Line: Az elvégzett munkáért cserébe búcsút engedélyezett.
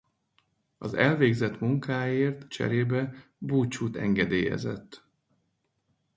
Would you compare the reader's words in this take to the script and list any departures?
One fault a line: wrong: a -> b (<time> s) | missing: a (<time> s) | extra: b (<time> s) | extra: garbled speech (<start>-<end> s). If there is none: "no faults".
no faults